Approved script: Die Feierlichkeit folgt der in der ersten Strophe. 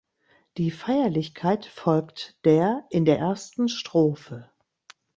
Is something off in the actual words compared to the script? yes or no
no